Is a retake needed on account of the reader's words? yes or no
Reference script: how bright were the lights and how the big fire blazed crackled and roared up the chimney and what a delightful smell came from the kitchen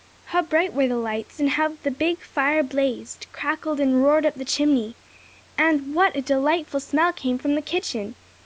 no